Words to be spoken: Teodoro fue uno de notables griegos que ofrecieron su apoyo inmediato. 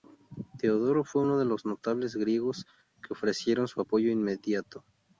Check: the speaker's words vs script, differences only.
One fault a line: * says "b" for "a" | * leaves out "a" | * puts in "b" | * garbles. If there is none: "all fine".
* puts in "los"